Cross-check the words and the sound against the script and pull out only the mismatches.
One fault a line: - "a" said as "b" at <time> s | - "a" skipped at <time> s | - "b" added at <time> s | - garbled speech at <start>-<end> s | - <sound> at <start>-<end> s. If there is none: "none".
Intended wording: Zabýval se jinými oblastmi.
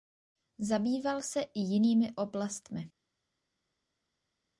- "i" added at 1.4 s